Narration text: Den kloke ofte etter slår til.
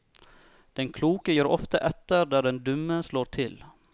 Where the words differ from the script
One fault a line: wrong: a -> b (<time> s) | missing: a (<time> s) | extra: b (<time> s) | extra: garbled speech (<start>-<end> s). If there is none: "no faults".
extra: gir (1.3 s)
extra: der den dumme (2.3 s)